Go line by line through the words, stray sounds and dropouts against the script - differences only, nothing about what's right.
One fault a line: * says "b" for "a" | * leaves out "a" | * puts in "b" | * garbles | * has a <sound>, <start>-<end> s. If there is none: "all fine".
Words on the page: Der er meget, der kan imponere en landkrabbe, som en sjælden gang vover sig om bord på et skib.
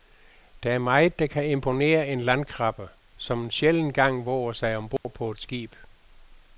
* has a dropout, 5.0-5.0 s